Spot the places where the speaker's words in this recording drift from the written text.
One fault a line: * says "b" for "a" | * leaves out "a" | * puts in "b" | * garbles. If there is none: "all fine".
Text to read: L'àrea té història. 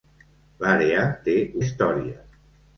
all fine